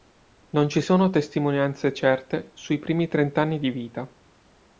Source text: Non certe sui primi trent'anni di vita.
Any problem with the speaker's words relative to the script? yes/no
yes